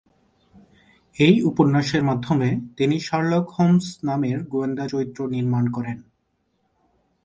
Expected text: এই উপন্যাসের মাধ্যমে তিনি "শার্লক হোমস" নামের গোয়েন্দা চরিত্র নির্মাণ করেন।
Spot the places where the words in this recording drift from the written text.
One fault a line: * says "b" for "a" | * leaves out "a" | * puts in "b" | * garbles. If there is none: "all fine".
all fine